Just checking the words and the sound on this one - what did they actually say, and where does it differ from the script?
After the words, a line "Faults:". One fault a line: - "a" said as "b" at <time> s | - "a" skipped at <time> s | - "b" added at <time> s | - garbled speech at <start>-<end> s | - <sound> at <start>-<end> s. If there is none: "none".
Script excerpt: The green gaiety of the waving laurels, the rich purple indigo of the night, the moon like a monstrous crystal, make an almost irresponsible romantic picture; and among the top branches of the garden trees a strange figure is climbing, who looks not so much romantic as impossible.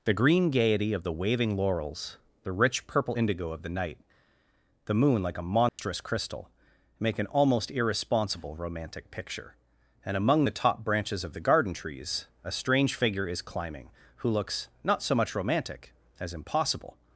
The green gaiety of the waving laurels, the rich purple indigo of the night, the moon like a monstrous crystal, make an almost irresponsible romantic picture; and among the top branches of the garden trees a strange figure is climbing, who looks not so much romantic as impossible.
Faults:
- dropout at 5.7-5.8 s